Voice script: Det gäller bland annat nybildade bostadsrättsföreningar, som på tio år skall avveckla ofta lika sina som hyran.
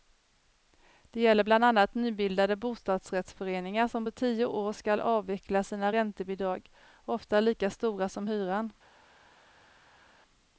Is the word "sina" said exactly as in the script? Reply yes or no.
no